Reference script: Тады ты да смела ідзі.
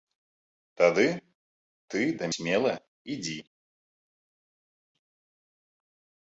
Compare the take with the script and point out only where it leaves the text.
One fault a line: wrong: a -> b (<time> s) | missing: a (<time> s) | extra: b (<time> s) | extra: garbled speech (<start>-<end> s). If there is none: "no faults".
no faults